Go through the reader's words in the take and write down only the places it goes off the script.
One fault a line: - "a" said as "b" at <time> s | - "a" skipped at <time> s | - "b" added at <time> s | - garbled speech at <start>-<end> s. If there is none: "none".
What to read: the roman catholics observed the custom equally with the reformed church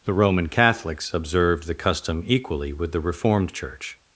none